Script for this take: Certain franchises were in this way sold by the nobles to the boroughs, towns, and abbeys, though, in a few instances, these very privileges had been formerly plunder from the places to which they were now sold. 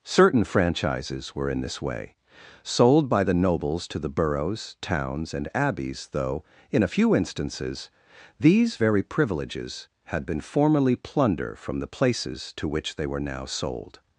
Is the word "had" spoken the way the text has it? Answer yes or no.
yes